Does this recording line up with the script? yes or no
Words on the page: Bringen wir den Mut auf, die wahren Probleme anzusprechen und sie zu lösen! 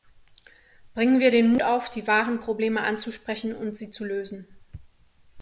yes